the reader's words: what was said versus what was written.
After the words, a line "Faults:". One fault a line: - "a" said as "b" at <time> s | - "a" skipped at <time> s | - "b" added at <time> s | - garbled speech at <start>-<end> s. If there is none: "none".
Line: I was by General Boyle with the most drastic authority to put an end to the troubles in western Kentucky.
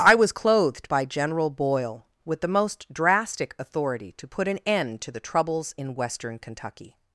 I was clothed by General Boyle with the most drastic authority to put an end to the troubles in western Kentucky.
Faults:
- "clothed" added at 0.3 s